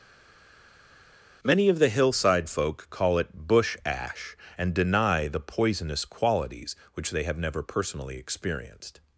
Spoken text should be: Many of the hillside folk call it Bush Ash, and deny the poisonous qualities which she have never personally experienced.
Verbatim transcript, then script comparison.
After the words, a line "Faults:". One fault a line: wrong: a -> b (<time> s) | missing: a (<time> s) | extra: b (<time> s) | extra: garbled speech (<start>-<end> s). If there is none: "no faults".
Many of the hillside folk call it Bush Ash, and deny the poisonous qualities which they have never personally experienced.
Faults:
wrong: she -> they (7.1 s)